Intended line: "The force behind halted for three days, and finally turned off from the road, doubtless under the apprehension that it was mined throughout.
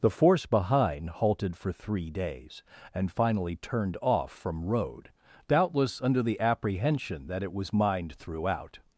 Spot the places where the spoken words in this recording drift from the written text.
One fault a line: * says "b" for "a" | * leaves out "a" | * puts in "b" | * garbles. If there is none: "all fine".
* leaves out "the"